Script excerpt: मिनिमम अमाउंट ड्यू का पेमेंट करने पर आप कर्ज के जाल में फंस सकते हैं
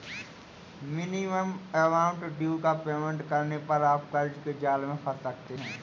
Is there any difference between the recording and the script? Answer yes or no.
no